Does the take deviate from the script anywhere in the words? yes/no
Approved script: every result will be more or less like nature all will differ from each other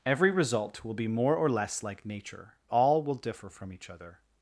no